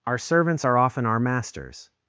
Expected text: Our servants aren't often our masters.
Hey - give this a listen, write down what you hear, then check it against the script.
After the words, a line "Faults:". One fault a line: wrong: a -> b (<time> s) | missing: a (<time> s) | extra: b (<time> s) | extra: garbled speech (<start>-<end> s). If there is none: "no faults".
Our servants are often our masters.
Faults:
wrong: aren't -> are (0.6 s)